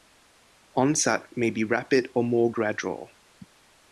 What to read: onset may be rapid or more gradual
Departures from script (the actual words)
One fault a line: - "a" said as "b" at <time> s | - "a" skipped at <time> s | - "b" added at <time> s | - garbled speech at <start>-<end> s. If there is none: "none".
none